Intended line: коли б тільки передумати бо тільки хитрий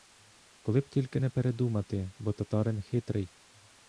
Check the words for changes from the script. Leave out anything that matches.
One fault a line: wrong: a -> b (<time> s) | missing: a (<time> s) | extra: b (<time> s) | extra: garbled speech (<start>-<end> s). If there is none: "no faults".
extra: не (1.2 s)
wrong: тільки -> татарин (2.3 s)